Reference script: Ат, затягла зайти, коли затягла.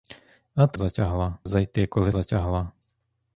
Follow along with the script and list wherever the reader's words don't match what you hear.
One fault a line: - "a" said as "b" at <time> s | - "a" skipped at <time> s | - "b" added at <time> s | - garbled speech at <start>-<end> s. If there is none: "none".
none